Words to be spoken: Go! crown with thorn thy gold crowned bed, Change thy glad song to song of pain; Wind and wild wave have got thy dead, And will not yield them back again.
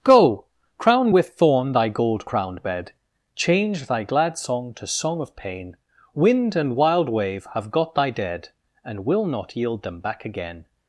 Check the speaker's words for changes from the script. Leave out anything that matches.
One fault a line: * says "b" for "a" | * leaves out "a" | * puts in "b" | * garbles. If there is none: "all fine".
all fine